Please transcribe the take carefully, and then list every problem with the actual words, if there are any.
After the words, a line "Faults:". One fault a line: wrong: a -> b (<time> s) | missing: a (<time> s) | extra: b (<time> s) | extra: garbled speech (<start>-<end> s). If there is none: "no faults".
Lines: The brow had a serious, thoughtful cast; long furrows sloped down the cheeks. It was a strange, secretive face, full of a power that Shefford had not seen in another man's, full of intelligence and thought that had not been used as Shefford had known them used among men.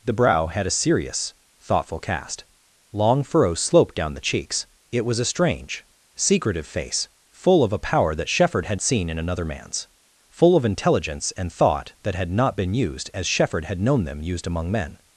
The brow had a serious, thoughtful cast; long furrows sloped down the cheeks. It was a strange, secretive face, full of a power that Shefford had seen in another man's, full of intelligence and thought that had not been used as Shefford had known them used among men.
Faults:
missing: not (8.8 s)